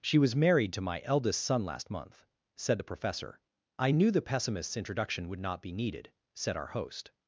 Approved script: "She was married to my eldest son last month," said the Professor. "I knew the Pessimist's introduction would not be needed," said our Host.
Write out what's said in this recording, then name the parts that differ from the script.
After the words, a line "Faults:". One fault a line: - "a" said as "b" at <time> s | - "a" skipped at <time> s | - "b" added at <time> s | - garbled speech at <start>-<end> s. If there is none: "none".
"She was married to my eldest son last month," said the Professor. "I knew the Pessimist's introduction would not be needed," said our Host.
Faults:
none